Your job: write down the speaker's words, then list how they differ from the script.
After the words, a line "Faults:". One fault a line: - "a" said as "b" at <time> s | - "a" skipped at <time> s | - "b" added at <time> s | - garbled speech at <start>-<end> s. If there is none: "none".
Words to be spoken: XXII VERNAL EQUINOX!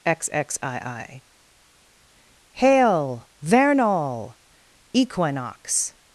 XXII HAIL, VERNAL EQUINOX!
Faults:
- "HAIL" added at 2.5 s